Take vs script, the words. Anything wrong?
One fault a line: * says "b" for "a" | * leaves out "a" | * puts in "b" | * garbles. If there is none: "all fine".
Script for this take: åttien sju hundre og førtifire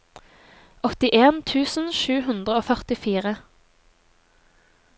* puts in "tusen"